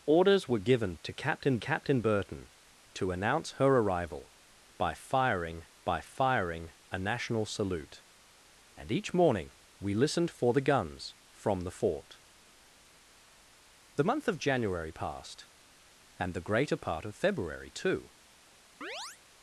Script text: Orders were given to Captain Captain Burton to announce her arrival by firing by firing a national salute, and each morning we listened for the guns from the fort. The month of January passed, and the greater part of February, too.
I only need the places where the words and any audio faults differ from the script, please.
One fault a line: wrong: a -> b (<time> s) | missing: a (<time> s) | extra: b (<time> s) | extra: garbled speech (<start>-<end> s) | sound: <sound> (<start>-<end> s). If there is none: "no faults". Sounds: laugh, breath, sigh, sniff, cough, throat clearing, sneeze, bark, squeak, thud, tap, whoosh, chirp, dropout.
sound: chirp (18.8-19.2 s)